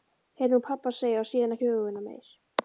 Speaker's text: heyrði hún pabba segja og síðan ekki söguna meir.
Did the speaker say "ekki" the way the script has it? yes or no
no